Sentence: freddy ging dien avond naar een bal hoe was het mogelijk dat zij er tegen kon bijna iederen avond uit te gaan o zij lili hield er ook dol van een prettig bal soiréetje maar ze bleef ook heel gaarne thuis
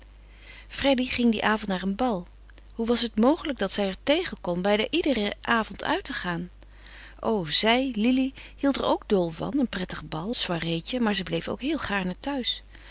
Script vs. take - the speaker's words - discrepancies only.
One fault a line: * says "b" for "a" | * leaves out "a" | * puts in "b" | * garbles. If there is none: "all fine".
all fine